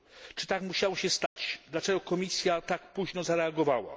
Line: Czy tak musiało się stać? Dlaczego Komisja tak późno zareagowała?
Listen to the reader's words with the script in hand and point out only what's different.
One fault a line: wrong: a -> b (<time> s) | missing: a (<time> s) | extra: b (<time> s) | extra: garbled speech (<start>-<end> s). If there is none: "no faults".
no faults